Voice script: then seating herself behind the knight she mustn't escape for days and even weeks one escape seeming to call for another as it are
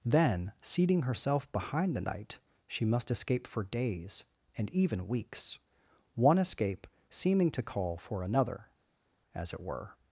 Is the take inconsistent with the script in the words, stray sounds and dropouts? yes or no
yes